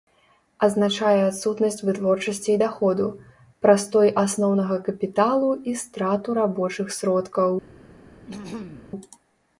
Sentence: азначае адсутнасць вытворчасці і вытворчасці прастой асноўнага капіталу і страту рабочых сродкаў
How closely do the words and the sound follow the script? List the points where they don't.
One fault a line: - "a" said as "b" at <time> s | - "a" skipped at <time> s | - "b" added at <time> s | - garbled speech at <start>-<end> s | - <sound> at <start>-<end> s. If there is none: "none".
- "вытворчасці" said as "даходу" at 2.6 s
- throat clearing at 8.3-8.9 s